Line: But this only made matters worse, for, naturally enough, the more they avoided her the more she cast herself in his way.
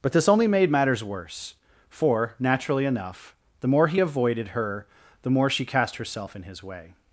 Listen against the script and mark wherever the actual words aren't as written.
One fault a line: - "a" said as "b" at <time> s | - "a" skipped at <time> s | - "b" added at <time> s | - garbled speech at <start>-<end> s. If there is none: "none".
- "they" said as "he" at 3.9 s